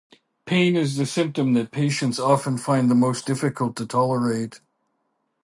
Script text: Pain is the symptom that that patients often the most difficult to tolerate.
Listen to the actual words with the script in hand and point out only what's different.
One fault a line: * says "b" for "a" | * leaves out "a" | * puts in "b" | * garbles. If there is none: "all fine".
* leaves out "that"
* puts in "find"